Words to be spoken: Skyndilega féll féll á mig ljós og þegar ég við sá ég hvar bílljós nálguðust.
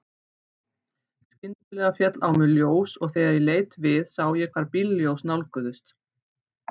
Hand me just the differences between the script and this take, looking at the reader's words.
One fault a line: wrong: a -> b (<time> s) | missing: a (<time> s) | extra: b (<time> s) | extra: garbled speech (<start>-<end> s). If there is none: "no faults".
missing: féll (2.2 s)
extra: leit (3.5 s)